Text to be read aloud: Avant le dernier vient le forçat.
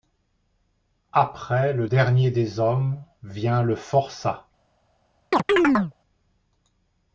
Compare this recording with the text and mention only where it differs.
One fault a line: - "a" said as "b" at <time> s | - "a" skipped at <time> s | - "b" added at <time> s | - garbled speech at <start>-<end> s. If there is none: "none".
- "Avant" said as "Après" at 1.1 s
- "des hommes" added at 2.3 s